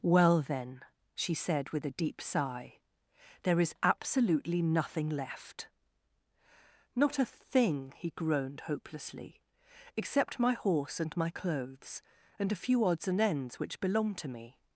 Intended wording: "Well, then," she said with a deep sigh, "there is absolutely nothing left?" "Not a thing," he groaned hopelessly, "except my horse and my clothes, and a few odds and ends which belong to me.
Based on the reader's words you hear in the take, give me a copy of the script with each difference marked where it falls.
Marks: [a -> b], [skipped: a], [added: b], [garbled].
"Well, then," she said with a deep sigh, "there is absolutely nothing left?" "Not a thing," he groaned hopelessly, "except my horse and my clothes, and a few odds and ends which belong to me.